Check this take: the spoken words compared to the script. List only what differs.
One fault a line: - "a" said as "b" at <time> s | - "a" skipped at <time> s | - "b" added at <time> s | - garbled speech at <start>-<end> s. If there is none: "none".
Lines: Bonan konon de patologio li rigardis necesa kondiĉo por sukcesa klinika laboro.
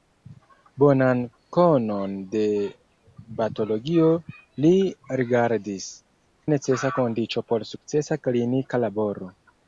none